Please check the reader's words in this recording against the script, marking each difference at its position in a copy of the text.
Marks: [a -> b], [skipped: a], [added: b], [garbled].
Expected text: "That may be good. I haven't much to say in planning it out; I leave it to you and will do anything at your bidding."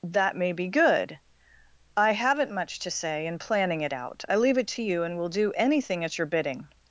"That may be good. I haven't much to say in planning it out; I leave it to you and will do anything at your bidding."